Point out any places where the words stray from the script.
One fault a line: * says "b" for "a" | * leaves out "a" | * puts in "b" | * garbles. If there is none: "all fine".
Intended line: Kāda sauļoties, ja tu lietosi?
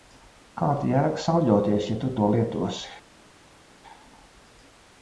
* puts in "jēga"
* puts in "to"